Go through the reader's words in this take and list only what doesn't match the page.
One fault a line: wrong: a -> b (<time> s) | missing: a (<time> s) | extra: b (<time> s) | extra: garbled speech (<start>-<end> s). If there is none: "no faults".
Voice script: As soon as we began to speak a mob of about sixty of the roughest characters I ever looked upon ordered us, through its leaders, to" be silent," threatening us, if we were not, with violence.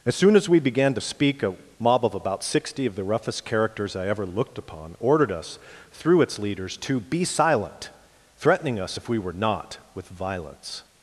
no faults